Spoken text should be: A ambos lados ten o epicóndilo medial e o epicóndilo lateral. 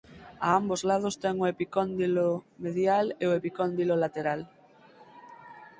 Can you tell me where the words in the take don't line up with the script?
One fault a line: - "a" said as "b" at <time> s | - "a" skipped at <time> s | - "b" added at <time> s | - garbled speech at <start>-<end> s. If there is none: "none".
none